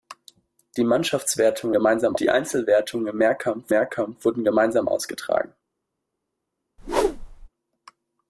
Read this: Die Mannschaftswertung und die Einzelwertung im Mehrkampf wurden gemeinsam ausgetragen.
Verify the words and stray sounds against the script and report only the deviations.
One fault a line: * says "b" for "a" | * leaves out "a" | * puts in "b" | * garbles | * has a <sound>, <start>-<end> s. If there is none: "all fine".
* says "gemeinsam" for "und"
* puts in "Mehrkampf"
* has a whoosh, 6.8-7.5 s